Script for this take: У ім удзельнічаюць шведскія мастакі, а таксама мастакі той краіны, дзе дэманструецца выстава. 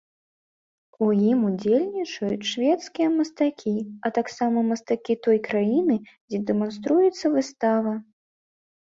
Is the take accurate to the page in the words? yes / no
yes